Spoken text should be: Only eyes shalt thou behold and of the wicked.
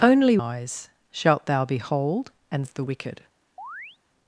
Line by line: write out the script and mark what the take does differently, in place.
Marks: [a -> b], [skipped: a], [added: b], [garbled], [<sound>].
Only eyes shalt thou behold and of the wicked. [chirp]